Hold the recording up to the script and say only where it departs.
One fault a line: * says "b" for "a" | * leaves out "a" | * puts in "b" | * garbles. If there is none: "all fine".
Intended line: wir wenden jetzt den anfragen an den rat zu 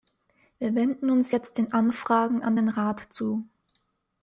* puts in "uns"